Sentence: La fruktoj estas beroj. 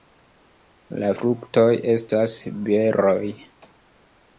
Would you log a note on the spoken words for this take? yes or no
no